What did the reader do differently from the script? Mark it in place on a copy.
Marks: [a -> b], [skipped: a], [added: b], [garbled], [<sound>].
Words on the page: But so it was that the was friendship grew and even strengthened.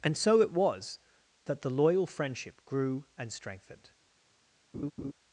[But -> And] so it was that the [was -> loyal] friendship grew and [skipped: even] strengthened. [laugh]